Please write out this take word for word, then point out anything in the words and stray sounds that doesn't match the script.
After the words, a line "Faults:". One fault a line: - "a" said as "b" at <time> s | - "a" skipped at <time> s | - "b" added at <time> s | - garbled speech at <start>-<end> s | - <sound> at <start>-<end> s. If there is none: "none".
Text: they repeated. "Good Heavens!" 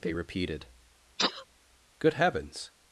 they repeated. "Good Heavens!"
Faults:
- sneeze at 1.2-1.4 s